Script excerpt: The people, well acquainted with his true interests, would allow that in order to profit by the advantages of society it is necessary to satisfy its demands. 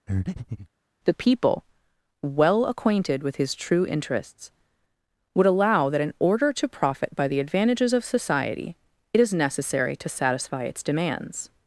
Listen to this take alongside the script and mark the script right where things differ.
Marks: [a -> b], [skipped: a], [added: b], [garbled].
The people, well acquainted with his true interests, would allow that in order to profit by the advantages of society it is necessary to satisfy its demands.